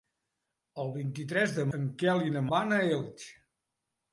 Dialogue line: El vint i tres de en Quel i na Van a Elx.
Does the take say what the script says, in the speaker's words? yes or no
yes